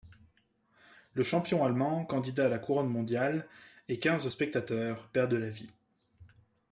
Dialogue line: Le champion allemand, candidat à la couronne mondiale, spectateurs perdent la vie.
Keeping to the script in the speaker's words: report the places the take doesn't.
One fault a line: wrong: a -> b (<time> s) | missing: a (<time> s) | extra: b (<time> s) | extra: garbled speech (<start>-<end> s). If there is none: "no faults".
extra: et quinze (3.9 s)